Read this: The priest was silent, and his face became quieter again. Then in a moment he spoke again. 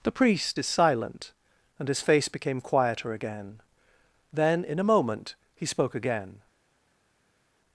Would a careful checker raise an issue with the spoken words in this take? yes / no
yes